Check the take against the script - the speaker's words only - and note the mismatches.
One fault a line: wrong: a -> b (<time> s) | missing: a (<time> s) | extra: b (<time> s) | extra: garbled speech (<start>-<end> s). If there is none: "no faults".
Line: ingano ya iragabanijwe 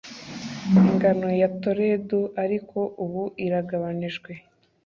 extra: toledo ariko ubu (1.6 s)